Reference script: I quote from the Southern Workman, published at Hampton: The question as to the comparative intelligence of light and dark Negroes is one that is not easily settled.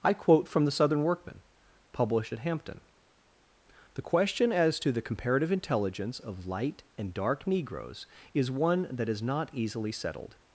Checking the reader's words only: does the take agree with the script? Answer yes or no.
yes